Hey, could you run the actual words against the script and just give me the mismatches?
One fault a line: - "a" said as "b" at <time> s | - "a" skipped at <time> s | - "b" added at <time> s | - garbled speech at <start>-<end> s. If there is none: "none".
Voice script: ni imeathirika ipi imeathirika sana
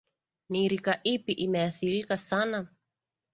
- "imeathirika" said as "rika" at 0.7 s